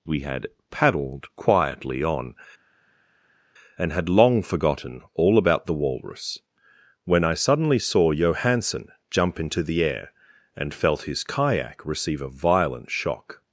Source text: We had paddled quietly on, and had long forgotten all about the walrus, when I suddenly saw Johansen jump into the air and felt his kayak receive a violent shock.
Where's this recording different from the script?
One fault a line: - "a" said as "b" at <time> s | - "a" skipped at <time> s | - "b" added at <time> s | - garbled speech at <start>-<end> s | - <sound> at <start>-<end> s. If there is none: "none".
none